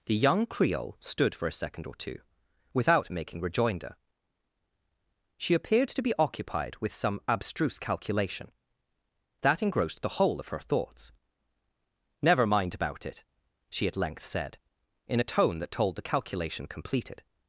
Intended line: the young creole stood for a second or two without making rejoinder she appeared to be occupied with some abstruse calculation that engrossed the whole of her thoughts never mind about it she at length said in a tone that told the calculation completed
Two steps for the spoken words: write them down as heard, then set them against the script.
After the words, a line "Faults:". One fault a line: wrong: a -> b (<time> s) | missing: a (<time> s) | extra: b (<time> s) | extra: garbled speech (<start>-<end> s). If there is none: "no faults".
the young creole stood for a second or two without making rejoinder she appeared to be occupied with some abstruse calculation that engrossed the whole of her thoughts never mind about it she at length said in a tone that told the calculation completed
Faults:
no faults